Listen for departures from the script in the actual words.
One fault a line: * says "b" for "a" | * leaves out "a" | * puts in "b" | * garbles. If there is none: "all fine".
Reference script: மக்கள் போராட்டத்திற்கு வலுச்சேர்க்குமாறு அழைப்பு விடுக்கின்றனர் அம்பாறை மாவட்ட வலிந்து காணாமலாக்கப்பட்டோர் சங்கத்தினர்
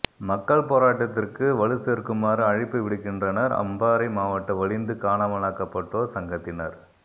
all fine